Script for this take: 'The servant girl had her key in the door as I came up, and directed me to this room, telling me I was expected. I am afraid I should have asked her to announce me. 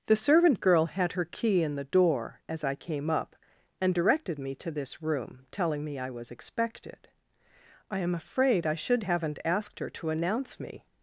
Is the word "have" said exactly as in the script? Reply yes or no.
no